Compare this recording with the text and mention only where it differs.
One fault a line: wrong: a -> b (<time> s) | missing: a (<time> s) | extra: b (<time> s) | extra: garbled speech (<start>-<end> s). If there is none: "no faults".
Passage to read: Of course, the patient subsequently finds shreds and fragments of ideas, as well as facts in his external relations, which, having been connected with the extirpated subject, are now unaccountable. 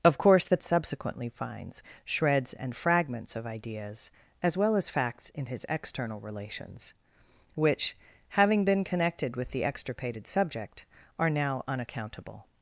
missing: patient (0.6 s)